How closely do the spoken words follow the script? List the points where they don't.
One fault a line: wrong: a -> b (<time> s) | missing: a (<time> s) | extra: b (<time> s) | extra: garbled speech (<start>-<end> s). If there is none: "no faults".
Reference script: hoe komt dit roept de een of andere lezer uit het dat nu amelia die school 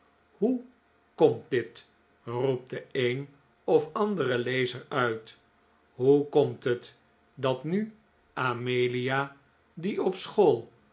extra: hoe komt (5.9 s)
extra: op (10.0 s)